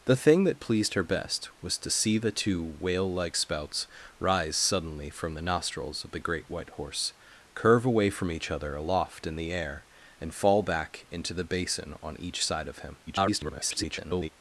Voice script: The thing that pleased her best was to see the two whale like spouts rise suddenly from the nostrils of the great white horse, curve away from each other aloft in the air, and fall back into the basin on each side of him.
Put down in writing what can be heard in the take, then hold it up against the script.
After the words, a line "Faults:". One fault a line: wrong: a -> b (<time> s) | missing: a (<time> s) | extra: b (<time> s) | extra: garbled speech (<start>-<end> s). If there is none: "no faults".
The thing that pleased her best was to see the two whale like spouts rise suddenly from the nostrils of the great white horse, curve away from each other aloft in the air, and fall back into the basin on each side of him. [garbled]
Faults:
extra: garbled speech (13.1-14.3 s)